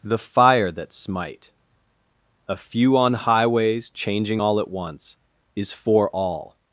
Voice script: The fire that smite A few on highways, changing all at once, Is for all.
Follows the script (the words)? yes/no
yes